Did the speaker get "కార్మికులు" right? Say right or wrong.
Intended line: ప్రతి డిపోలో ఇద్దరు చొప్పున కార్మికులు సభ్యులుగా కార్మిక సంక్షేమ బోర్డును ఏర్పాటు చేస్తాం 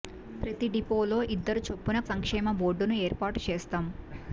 wrong